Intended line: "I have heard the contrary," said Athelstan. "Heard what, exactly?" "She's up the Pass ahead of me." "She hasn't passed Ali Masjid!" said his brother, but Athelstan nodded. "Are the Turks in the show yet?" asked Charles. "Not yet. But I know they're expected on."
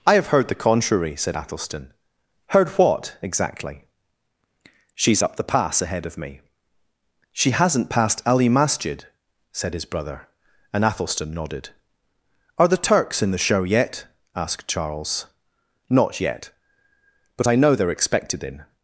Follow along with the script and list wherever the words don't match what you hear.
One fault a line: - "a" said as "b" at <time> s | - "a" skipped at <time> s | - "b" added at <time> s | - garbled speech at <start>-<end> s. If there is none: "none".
- "but" said as "and" at 10.7 s
- "on" said as "in" at 18.4 s